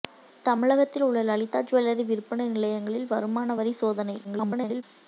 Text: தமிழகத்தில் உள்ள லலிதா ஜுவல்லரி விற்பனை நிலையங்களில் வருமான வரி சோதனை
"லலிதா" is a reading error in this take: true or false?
false